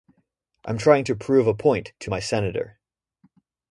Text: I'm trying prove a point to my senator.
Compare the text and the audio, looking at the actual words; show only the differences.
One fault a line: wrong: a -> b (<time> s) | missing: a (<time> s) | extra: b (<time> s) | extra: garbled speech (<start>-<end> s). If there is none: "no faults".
extra: to (1.0 s)